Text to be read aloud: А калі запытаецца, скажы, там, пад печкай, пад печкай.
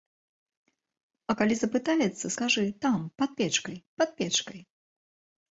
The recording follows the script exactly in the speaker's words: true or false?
true